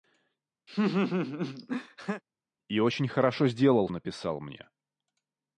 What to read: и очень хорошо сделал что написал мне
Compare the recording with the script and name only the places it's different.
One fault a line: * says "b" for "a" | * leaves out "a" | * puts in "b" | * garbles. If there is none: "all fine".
* leaves out "что"